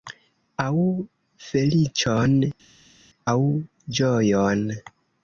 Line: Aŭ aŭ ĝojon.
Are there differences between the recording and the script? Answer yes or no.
yes